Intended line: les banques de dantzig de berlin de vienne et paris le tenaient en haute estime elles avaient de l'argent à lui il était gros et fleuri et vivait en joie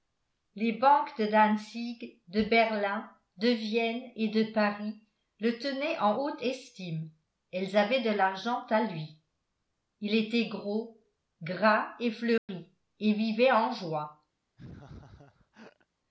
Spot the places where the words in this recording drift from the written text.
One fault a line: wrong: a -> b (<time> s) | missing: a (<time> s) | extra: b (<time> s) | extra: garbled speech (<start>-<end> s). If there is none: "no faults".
extra: de (4.3 s)
extra: gras (11.4 s)